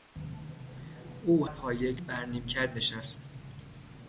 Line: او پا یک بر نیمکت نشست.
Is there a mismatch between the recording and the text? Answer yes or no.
no